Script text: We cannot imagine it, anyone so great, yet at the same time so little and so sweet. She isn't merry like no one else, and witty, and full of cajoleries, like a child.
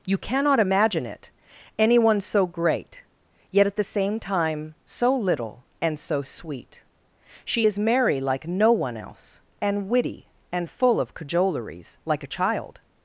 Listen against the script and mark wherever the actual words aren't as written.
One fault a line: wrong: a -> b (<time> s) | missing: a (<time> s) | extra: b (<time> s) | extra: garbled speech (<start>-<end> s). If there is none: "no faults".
wrong: We -> You (0.1 s)
wrong: isn't -> is (7.6 s)